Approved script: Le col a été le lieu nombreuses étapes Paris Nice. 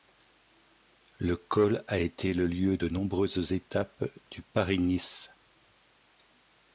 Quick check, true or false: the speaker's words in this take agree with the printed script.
false